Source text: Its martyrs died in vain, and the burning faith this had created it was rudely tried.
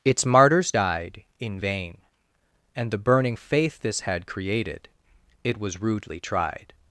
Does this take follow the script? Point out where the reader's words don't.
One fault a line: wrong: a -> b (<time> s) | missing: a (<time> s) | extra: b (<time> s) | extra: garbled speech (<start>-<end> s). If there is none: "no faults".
no faults